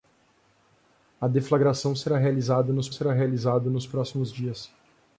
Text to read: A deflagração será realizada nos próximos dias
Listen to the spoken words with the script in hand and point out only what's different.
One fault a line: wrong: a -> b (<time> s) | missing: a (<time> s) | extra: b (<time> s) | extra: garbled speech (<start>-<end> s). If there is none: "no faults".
extra: será realizada nos (2.9 s)